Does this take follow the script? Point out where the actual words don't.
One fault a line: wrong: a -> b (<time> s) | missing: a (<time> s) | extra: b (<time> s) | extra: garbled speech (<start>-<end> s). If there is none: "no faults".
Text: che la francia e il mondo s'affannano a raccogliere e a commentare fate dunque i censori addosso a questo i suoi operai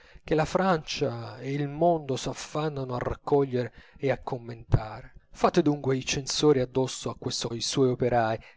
no faults